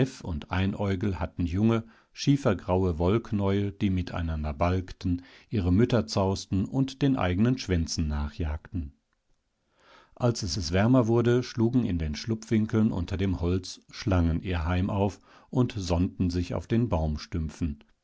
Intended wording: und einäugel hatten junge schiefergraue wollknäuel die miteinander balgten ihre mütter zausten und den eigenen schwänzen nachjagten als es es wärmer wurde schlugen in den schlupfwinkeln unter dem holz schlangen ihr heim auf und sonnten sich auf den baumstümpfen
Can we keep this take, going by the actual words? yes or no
yes